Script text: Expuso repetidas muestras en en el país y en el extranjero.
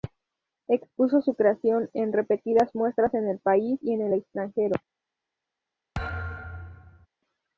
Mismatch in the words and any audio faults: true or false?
true